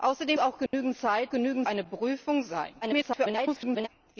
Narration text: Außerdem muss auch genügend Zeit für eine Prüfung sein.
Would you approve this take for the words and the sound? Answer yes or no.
no